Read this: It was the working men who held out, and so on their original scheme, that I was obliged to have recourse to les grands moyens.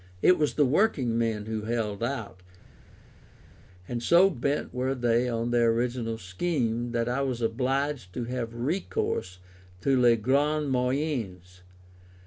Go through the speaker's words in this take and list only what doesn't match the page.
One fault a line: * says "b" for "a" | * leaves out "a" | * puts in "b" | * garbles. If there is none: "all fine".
* puts in "bent were they"